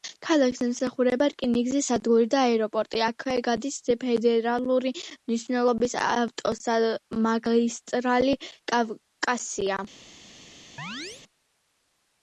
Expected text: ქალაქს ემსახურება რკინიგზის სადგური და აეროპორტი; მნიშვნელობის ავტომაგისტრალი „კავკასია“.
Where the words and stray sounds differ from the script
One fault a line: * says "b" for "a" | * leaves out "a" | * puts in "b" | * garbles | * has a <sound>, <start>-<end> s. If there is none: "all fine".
* puts in "აქვე გადის ფედერალური"
* has a chirp, 10.8-11.2 s